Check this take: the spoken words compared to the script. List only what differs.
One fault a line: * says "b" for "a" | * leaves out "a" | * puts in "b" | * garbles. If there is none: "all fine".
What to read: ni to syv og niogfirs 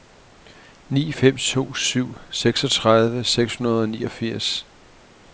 * puts in "fem"
* puts in "seksogtredive seks hundrede"